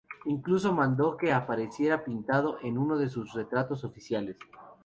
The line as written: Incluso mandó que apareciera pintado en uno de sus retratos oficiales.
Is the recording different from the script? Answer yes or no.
no